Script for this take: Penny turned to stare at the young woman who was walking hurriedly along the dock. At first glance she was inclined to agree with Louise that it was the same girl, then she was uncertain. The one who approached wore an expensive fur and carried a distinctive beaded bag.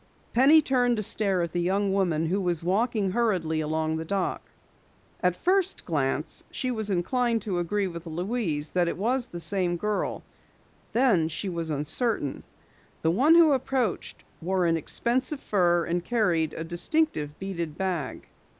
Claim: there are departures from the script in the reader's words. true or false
false